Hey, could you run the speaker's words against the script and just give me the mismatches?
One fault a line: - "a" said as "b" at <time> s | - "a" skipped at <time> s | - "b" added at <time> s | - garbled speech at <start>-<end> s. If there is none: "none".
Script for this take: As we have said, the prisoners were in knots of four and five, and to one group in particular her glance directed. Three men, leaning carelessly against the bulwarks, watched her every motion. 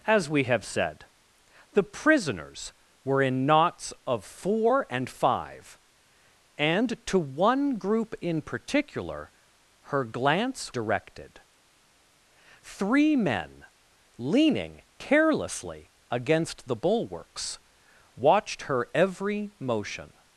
none